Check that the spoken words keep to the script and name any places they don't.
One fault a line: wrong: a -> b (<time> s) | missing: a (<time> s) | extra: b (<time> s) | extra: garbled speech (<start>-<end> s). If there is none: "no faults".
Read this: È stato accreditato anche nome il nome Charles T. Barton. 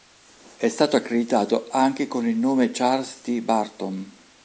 wrong: nome -> con (2.1 s)